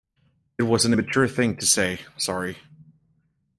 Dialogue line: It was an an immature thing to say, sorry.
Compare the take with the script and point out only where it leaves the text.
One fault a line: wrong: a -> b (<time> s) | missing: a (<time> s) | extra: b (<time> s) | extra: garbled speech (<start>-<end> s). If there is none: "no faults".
missing: an (0.9 s)